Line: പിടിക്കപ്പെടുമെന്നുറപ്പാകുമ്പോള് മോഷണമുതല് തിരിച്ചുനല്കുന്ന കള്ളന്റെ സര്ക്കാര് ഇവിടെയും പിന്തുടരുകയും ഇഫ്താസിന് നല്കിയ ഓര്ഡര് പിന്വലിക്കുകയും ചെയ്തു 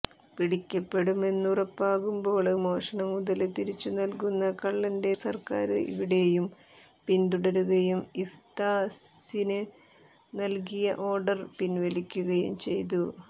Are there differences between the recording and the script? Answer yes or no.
no